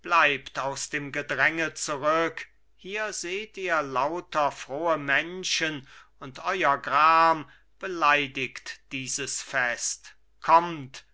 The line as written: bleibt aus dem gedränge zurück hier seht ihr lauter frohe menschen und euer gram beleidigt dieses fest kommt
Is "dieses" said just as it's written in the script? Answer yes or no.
yes